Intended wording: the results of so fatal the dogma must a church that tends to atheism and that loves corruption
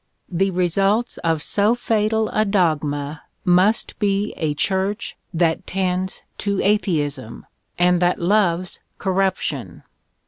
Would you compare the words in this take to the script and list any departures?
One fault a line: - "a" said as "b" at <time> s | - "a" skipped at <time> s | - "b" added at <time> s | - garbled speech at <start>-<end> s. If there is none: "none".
- "the" said as "a" at 2.3 s
- "be" added at 4.0 s